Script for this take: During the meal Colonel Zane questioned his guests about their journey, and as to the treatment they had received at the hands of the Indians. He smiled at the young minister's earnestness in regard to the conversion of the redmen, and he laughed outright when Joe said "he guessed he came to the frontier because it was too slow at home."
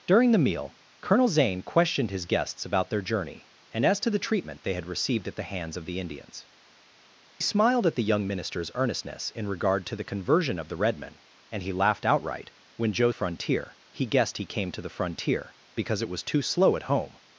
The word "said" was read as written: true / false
false